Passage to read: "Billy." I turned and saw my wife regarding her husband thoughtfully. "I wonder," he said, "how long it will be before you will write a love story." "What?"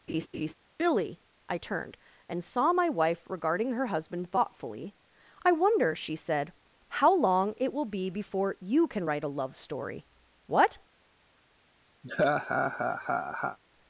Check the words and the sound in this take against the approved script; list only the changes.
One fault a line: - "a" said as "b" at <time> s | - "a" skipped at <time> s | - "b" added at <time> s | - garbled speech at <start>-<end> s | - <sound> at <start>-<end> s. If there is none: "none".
- laugh at 0.1-0.5 s
- "he" said as "she" at 5.9 s
- "will" said as "can" at 8.9 s
- laugh at 12.0-13.6 s